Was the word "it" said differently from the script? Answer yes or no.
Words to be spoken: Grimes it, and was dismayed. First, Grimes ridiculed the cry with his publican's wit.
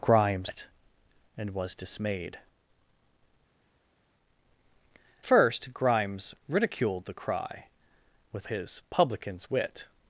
no